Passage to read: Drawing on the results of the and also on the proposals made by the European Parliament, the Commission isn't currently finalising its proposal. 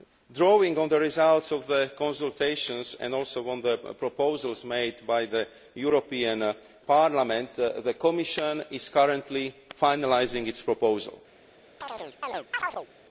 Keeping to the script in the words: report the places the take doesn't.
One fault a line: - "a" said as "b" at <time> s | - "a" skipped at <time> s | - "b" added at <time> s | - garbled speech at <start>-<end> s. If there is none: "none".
- "consultations" added at 2.0 s
- "isn't" said as "is" at 8.7 s